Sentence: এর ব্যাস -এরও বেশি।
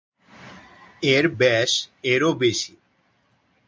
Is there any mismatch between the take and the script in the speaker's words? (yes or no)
no